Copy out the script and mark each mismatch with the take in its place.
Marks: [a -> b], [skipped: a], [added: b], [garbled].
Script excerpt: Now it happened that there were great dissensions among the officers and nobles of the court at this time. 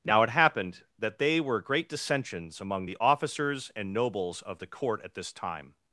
Now it happened that [there -> they] were great dissensions among the officers and nobles of the court at this time.